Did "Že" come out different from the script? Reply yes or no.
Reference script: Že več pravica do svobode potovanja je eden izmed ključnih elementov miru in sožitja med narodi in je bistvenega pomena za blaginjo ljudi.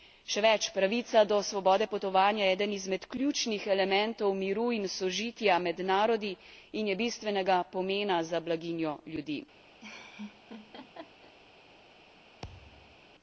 yes